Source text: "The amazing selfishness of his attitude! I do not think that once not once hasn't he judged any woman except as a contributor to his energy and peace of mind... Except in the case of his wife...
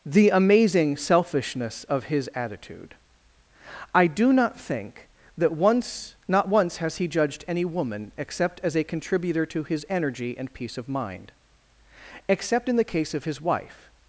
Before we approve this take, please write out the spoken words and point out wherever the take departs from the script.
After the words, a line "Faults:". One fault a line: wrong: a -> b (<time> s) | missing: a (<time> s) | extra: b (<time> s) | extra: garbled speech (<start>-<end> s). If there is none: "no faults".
"The amazing selfishness of his attitude! I do not think that once not once has he judged any woman except as a contributor to his energy and peace of mind... Except in the case of his wife...
Faults:
wrong: hasn't -> has (6.8 s)